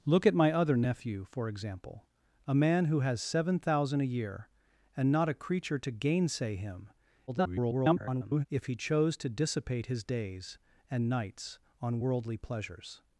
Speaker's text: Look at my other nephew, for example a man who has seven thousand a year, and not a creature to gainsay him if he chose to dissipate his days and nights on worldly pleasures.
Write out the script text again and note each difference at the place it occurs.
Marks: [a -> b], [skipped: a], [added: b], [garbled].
Look at my other nephew, for example a man who has seven thousand a year, and not a creature to gainsay him [garbled] if he chose to dissipate his days and nights on worldly pleasures.